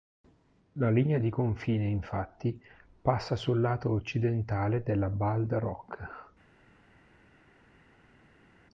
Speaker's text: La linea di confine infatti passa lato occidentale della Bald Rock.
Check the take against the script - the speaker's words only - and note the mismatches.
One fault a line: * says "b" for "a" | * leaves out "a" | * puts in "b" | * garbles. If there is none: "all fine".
* puts in "sul"